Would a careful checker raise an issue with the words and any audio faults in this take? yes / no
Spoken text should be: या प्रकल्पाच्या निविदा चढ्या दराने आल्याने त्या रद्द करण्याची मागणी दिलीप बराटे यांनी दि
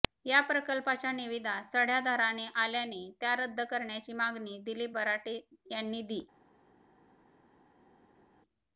no